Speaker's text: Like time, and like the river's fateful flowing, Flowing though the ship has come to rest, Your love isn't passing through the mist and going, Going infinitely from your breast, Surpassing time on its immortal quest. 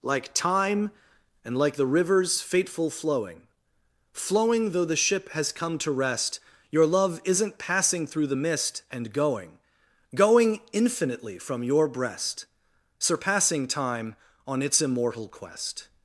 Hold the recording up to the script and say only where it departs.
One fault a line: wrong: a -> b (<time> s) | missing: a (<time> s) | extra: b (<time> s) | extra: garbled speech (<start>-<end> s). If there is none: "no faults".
no faults